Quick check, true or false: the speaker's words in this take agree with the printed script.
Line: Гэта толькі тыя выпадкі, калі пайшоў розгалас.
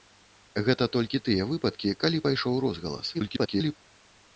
false